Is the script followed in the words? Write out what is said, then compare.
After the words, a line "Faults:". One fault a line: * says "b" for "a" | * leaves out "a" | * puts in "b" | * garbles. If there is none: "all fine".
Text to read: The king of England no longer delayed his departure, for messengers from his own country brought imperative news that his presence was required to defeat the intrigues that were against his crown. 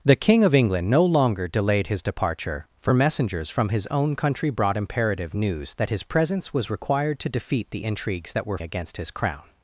The king of England no longer delayed his departure, for messengers from his own country brought imperative news that his presence was required to defeat the intrigues that were against his crown.
Faults:
all fine